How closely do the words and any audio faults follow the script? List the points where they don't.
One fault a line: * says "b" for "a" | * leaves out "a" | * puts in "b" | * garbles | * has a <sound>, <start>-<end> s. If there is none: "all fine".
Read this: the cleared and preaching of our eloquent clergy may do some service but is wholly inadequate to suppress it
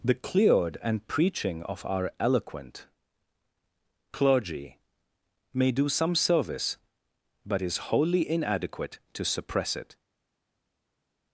all fine